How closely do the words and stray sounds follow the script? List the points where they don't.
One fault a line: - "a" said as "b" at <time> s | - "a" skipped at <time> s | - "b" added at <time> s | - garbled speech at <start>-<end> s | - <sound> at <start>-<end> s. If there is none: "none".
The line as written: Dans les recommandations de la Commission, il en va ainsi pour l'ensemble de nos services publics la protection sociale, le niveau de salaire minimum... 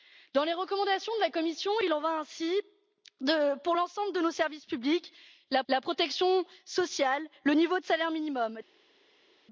- "la" added at 5.7 s